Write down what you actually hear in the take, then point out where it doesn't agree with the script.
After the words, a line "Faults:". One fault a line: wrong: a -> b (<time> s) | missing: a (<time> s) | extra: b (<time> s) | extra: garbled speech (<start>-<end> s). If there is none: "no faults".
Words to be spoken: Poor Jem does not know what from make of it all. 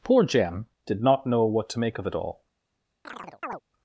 Poor Jem did not know what to make of it all.
Faults:
wrong: does -> did (0.9 s)
wrong: from -> to (1.7 s)